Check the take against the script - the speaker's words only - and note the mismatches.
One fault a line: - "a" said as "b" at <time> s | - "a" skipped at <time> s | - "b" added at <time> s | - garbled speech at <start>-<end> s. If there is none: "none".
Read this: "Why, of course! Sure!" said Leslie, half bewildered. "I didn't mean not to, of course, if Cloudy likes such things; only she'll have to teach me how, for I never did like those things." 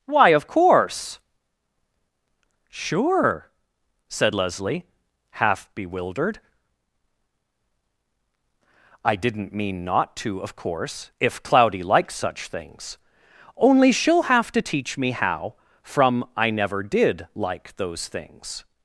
- "for" said as "from" at 15.8 s